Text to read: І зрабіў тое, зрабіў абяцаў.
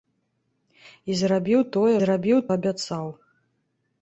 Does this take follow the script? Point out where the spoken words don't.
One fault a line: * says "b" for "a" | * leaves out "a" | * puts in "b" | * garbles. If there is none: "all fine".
all fine